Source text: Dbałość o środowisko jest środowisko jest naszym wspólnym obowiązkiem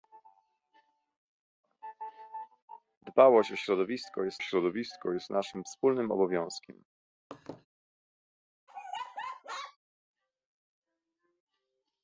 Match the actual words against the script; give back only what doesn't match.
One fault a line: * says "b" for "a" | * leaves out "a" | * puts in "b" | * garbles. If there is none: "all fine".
all fine